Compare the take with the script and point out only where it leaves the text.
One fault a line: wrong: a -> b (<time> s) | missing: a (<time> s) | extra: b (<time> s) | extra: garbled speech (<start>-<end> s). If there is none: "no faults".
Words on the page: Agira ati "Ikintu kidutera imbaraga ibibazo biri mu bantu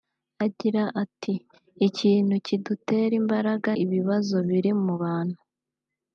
no faults